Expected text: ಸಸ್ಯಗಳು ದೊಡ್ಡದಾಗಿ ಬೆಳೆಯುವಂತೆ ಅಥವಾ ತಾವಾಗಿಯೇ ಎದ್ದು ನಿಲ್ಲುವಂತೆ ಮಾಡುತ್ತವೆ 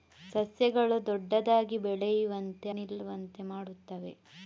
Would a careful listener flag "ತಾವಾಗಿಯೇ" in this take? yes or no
yes